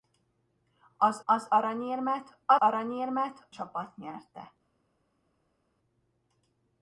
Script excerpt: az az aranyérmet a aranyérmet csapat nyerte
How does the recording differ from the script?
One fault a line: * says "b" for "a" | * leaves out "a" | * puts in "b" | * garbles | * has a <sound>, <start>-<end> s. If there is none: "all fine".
all fine